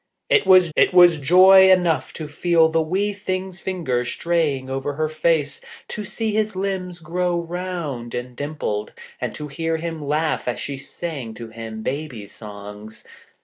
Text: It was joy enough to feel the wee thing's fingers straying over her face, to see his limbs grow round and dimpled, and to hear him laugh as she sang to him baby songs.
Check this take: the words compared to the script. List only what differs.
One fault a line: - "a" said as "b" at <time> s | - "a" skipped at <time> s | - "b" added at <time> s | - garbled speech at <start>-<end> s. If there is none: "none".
- "it was" added at 0.8 s